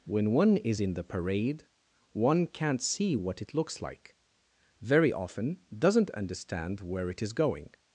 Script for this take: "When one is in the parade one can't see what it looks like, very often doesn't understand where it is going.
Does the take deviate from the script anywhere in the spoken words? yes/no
no